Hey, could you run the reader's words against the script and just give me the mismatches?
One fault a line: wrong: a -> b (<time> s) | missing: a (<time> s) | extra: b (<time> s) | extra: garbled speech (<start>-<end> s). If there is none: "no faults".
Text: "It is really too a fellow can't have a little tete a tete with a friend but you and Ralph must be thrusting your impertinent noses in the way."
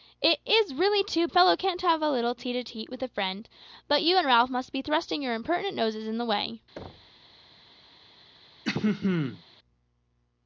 no faults